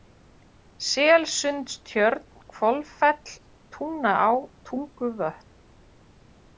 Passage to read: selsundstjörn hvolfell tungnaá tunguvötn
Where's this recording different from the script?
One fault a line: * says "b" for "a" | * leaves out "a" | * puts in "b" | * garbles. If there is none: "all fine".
all fine